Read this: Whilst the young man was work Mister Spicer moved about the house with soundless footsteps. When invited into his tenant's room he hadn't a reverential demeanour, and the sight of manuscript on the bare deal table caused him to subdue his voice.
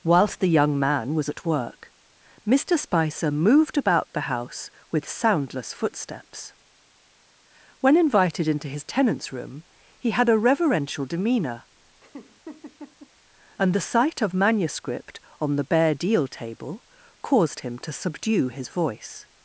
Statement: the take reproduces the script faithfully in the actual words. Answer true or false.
false